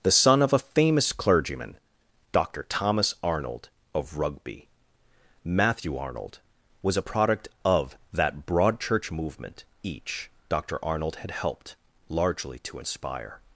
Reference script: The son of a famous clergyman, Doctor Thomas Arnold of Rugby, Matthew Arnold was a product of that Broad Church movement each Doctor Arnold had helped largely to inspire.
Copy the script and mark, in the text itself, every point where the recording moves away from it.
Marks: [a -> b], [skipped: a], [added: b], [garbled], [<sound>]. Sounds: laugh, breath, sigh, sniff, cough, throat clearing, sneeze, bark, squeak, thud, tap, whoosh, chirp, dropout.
The son of a famous clergyman, Doctor Thomas Arnold of Rugby, Matthew Arnold was a product of that Broad Church movement each Doctor Arnold had helped largely to inspire.